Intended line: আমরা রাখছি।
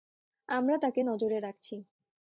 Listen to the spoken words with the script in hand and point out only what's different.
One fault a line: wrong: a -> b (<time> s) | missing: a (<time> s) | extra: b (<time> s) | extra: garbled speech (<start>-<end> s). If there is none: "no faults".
extra: তাকে নজরে (0.8 s)